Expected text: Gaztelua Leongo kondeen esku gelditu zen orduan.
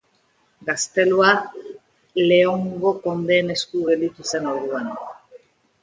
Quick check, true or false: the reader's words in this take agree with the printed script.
true